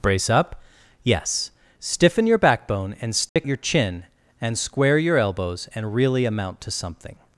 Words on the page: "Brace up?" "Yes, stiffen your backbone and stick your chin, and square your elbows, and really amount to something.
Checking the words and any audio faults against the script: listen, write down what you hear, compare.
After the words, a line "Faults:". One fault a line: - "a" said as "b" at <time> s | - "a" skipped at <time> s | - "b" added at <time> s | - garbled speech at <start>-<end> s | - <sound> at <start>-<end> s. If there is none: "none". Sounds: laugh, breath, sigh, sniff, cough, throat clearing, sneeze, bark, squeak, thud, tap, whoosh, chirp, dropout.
"Brace up?" "Yes, stiffen your backbone and stick your chin, and square your elbows, and really amount to something.
Faults:
- dropout at 3.3-3.4 s